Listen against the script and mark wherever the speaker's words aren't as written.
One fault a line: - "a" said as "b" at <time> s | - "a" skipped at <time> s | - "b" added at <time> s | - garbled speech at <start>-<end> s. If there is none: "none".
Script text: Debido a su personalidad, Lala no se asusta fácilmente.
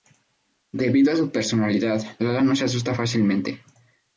none